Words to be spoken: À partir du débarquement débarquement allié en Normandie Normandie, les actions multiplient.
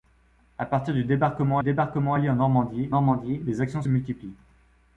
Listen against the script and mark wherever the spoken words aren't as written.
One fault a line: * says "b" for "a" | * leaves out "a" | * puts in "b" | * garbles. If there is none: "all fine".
all fine